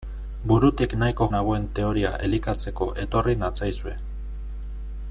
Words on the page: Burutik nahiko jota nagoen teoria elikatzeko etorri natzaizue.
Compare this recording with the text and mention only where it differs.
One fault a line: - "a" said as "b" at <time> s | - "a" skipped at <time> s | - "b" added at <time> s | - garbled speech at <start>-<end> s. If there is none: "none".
- "jota" skipped at 1.3 s